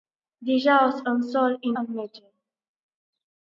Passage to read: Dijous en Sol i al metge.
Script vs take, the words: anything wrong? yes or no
no